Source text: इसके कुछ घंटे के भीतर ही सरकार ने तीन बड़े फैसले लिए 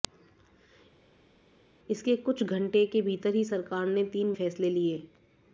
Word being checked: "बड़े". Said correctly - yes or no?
no